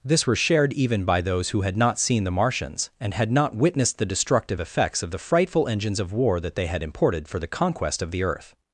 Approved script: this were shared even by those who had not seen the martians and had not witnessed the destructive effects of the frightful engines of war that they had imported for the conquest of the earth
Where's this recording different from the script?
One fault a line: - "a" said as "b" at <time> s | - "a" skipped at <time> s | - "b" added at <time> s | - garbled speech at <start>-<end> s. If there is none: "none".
none